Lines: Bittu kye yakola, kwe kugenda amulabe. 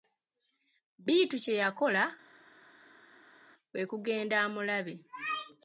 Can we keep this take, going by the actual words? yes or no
yes